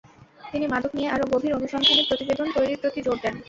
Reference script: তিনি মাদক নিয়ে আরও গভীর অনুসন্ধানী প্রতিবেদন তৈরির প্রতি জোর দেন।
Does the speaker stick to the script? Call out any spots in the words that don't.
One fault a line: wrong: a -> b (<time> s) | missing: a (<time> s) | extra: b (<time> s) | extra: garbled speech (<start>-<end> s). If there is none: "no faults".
no faults